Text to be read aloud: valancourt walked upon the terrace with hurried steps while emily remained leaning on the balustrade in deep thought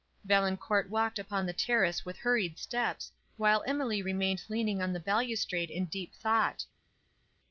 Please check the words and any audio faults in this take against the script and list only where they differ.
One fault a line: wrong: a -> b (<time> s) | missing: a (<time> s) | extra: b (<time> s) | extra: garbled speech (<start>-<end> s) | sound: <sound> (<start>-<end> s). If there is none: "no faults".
no faults